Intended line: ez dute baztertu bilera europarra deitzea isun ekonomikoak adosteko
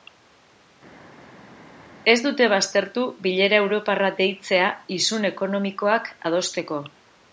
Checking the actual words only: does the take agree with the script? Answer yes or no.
yes